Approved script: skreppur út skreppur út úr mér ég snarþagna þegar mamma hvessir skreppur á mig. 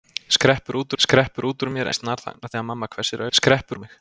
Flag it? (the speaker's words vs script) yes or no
no